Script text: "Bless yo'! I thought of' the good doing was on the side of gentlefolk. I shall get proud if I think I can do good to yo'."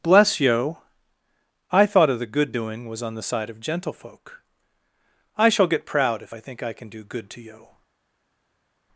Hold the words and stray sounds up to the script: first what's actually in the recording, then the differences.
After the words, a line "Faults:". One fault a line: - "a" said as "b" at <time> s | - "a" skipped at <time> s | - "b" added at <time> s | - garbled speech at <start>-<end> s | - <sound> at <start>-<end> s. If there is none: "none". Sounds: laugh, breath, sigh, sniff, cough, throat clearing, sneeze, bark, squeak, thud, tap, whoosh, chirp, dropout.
"Bless yo'! I thought of' the good doing was on the side of gentlefolk. I shall get proud if I think I can do good to yo'."
Faults:
none